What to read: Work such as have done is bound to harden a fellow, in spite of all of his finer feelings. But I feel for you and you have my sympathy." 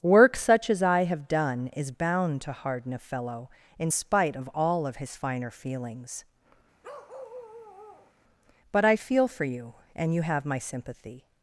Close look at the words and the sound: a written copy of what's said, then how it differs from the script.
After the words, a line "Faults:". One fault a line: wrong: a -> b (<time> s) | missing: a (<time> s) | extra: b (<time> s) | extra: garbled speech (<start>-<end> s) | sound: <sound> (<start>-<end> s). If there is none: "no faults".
Work such as I have done is bound to harden a fellow, in spite of all of his finer feelings. But I feel for you and you have my sympathy."
Faults:
extra: I (0.8 s)
sound: bark (6.8-8.1 s)